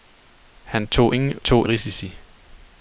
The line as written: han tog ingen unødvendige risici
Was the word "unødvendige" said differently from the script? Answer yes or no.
yes